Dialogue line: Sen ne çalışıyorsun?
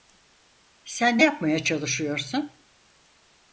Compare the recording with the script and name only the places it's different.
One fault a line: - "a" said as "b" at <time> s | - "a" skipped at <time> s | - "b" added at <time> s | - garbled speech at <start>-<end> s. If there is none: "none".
- "yapmaya" added at 1.2 s